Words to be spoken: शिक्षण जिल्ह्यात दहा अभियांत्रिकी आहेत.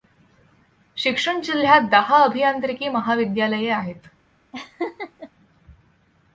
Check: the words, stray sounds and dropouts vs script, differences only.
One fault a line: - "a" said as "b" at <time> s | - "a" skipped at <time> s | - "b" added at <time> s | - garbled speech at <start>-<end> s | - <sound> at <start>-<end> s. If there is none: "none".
- "महाविद्यालये" added at 2.9 s
- laugh at 4.5-5.3 s